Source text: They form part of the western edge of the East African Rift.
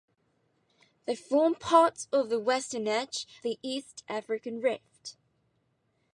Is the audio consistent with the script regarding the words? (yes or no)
no